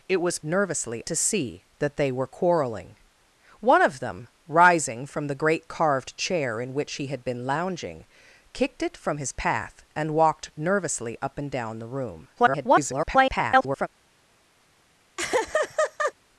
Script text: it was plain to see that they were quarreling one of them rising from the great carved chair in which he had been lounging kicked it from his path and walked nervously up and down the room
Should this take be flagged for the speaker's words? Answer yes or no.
yes